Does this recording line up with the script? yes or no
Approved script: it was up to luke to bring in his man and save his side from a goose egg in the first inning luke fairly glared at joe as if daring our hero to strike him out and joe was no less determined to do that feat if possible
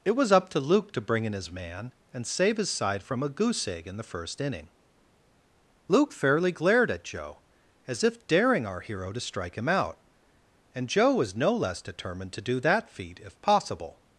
yes